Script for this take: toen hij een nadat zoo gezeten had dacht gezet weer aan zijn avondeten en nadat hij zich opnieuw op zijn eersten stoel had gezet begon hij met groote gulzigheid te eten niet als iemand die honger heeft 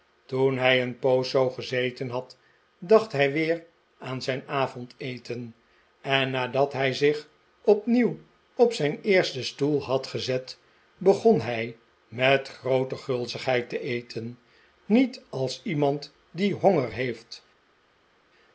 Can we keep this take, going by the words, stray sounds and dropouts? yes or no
no